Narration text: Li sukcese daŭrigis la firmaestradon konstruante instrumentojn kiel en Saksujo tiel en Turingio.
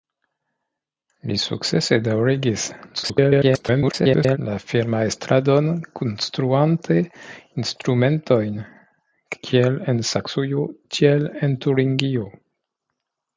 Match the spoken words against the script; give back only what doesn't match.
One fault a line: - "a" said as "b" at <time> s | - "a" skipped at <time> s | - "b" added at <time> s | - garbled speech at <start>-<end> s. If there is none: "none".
- garbled speech at 2.9-4.4 s